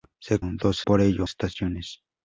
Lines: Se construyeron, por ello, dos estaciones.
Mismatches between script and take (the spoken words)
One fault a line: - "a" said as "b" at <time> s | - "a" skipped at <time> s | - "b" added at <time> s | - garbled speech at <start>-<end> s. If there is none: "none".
- "construyeron" said as "dos" at 0.4 s
- "dos" skipped at 1.3 s